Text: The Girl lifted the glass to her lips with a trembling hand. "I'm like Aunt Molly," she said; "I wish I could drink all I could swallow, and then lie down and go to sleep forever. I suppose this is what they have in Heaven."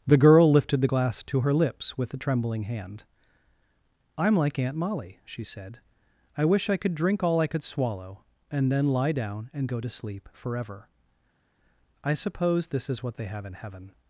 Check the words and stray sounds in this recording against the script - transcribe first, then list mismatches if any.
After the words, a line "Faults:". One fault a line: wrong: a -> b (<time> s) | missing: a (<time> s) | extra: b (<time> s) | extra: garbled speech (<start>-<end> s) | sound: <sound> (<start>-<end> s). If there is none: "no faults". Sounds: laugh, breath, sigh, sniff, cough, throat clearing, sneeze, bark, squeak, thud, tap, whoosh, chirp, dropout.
The Girl lifted the glass to her lips with a trembling hand. "I'm like Aunt Molly," she said; "I wish I could drink all I could swallow, and then lie down and go to sleep forever. I suppose this is what they have in Heaven."
Faults:
no faults